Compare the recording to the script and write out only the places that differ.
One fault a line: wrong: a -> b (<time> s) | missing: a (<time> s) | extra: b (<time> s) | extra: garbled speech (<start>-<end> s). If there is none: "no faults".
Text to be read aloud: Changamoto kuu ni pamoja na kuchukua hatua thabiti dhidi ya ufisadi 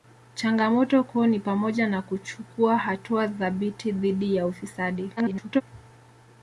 extra: garbled speech (5.2-5.6 s)